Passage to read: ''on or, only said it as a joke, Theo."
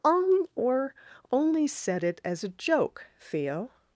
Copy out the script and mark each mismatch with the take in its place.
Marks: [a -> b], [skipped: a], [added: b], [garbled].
''on or, only said it as a joke, Theo."